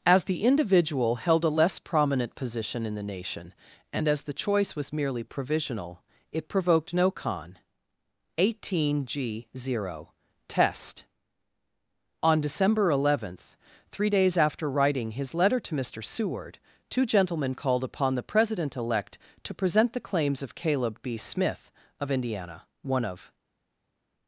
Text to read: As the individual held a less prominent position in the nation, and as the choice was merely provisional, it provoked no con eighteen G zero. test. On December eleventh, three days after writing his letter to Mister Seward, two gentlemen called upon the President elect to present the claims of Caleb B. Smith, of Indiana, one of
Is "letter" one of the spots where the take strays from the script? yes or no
no